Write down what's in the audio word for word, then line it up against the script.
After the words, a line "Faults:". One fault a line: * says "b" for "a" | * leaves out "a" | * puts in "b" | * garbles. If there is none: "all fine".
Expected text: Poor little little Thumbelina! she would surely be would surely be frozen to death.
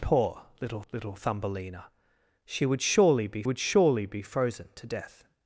Poor little little Thumbelina! she would surely be would surely be frozen to death.
Faults:
all fine